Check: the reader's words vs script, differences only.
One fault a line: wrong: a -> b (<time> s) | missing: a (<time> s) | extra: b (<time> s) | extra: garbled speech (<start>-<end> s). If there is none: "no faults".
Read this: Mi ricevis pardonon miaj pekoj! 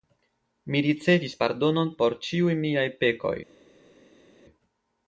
extra: por ĉiuj (2.0 s)